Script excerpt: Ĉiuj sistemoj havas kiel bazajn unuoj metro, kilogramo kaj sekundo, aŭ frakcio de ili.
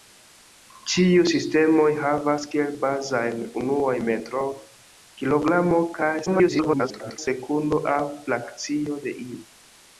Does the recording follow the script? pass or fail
fail